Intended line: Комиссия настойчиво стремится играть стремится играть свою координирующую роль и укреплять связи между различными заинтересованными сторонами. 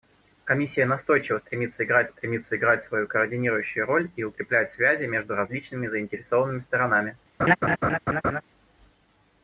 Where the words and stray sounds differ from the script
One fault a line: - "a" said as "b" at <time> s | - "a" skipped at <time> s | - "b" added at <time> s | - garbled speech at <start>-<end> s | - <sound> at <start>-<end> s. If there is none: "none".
- laugh at 7.4-8.4 s